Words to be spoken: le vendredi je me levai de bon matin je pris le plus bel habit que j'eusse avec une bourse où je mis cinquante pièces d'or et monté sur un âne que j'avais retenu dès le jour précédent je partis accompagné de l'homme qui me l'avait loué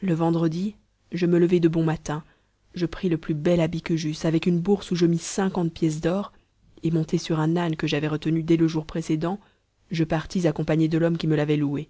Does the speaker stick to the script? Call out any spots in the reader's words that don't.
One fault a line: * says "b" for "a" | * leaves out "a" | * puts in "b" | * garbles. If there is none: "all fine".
all fine